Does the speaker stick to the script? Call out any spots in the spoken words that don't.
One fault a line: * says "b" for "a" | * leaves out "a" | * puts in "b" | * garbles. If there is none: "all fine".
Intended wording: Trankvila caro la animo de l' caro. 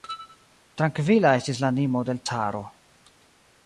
* says "estis" for "caro"